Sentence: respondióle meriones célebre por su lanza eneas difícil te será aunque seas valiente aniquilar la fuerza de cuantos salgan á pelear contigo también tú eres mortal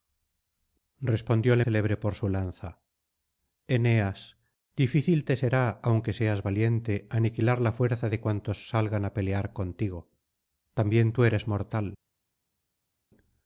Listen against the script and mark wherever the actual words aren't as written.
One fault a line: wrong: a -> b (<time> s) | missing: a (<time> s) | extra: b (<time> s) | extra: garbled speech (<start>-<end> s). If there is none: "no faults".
missing: meriones (1.6 s)